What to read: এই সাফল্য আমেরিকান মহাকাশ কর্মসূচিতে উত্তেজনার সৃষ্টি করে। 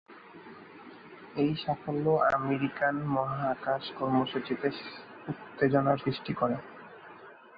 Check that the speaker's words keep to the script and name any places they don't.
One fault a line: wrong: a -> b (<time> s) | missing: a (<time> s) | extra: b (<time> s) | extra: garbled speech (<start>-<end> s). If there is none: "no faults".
no faults